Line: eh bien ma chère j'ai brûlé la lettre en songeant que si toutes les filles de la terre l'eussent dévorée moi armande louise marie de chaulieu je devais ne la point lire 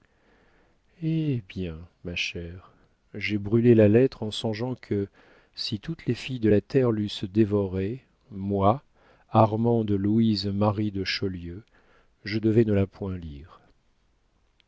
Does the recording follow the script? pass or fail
pass